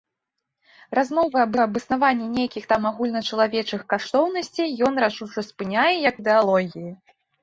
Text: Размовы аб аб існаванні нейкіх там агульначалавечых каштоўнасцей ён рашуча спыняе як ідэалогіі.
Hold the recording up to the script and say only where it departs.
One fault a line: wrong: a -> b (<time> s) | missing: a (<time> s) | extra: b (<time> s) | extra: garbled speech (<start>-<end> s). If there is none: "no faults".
no faults